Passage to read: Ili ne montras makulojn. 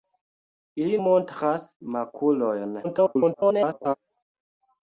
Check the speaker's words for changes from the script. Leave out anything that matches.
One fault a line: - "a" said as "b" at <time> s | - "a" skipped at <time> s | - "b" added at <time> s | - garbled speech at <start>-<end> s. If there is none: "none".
- "ne" skipped at 1.0 s
- garbled speech at 2.8-3.9 s